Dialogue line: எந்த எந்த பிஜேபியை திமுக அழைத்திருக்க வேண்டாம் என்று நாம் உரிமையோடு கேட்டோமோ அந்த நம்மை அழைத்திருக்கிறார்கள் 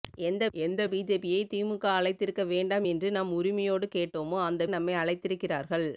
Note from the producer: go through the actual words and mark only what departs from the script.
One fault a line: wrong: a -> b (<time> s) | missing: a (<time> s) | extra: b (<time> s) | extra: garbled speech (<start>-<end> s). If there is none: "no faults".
no faults